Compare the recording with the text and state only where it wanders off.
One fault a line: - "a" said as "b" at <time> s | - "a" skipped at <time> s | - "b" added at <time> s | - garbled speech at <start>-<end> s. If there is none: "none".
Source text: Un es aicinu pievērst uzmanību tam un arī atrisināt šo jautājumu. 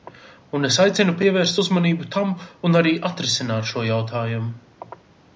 none